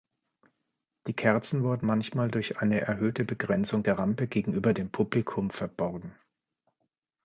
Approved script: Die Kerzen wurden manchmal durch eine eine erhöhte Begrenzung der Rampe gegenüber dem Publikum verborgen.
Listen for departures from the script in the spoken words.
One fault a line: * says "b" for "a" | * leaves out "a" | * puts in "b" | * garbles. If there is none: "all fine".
* leaves out "eine"